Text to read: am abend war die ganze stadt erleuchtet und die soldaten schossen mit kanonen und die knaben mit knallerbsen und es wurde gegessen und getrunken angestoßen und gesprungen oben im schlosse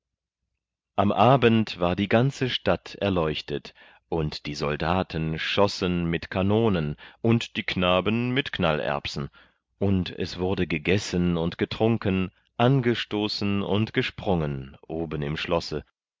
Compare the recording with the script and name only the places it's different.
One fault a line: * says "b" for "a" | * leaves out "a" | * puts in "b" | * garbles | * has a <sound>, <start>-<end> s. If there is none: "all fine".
all fine